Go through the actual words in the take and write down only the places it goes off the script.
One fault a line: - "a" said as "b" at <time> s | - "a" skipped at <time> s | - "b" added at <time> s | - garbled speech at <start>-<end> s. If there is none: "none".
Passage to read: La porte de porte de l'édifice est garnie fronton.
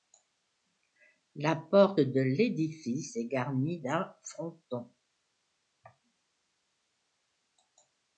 - "porte de" skipped at 2.2 s
- "d'un" added at 3.8 s